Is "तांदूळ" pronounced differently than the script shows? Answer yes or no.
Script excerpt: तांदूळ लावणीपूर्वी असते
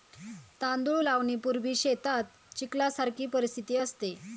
no